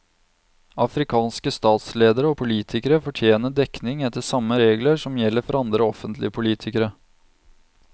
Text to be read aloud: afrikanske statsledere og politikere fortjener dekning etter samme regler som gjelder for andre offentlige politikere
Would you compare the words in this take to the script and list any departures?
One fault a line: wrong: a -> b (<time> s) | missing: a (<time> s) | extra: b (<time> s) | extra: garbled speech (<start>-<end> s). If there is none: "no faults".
no faults